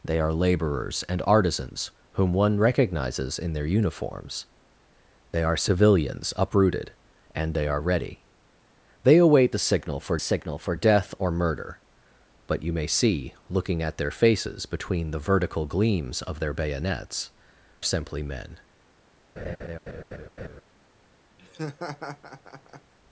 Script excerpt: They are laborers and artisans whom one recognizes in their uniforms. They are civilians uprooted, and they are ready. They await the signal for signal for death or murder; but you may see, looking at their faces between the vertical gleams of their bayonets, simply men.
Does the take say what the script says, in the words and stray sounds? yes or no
no